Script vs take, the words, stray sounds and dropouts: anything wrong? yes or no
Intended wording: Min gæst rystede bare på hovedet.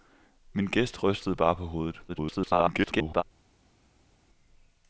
yes